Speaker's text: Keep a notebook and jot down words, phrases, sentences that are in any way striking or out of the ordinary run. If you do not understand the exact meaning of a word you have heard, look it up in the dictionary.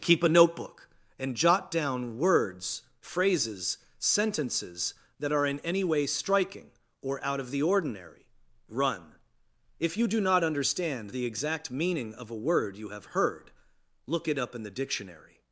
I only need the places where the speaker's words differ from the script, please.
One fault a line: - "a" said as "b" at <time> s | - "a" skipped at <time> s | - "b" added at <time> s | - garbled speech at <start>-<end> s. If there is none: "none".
none